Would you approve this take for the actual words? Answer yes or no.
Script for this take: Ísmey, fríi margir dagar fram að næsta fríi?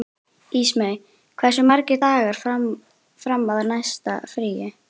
no